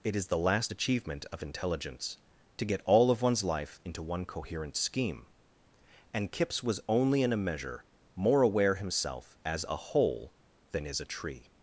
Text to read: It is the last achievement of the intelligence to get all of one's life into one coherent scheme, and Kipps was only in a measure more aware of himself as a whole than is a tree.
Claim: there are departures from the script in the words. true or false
true